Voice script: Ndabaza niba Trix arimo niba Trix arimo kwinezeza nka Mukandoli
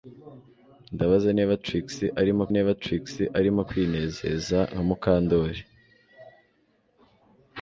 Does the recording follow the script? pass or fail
pass